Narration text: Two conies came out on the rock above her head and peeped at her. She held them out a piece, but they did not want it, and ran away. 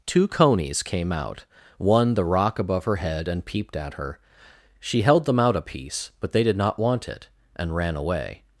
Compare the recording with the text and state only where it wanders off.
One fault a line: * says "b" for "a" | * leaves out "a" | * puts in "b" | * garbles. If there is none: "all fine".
* says "one" for "on"